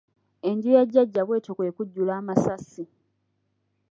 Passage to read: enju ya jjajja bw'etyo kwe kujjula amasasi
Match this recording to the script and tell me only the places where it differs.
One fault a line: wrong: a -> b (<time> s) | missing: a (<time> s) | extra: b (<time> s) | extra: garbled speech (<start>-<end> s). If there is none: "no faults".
no faults